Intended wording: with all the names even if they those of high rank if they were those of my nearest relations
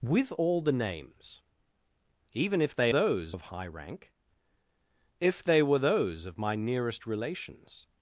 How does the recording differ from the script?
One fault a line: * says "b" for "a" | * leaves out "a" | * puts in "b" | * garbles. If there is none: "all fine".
all fine